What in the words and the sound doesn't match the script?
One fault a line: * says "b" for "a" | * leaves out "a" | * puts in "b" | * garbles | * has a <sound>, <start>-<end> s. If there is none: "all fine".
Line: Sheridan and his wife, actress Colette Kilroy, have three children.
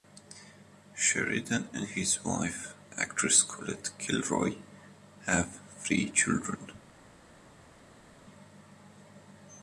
all fine